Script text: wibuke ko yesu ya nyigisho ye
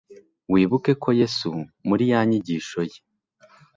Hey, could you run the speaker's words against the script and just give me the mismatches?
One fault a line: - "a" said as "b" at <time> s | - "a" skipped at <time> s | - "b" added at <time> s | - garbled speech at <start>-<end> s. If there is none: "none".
- "muri" added at 1.9 s